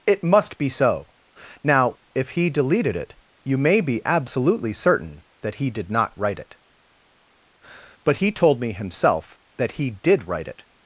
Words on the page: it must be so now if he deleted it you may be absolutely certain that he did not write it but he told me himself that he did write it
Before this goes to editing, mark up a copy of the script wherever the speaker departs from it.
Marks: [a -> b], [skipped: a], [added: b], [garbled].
it must be so now if he deleted it you may be absolutely certain that he did not write it but he told me himself that he did write it